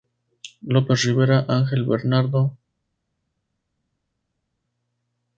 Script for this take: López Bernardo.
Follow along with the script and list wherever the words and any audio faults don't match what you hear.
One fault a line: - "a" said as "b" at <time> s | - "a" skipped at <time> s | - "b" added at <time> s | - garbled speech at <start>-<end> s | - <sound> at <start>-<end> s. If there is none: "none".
- "Rivera Ángel" added at 1.0 s